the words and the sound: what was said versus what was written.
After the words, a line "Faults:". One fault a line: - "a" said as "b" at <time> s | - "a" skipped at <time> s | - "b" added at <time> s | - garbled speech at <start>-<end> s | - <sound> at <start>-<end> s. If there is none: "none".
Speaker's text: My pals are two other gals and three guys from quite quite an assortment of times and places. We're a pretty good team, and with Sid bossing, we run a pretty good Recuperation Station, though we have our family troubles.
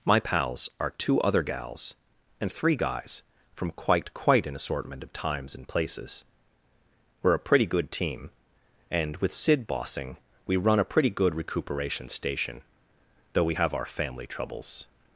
My pals are two other gals and three guys from quite quite an assortment of times and places. We're a pretty good team, and with Sid bossing, we run a pretty good Recuperation Station, though we have our family troubles.
Faults:
none